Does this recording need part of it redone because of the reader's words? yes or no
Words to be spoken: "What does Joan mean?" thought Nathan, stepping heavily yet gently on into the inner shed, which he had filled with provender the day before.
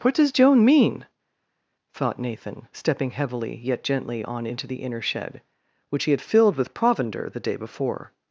no